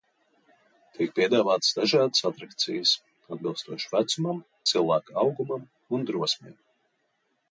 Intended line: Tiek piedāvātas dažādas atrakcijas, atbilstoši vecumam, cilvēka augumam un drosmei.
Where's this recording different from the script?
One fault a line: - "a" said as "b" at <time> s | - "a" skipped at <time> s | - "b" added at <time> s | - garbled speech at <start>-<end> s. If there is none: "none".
none